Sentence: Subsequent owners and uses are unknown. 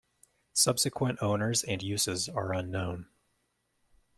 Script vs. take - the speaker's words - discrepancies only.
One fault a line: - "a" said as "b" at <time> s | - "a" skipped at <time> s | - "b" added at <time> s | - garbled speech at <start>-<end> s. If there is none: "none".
none